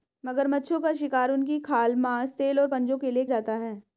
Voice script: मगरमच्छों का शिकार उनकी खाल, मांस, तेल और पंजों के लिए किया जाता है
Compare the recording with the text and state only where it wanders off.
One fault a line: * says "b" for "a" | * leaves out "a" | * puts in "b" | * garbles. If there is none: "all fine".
* leaves out "किया"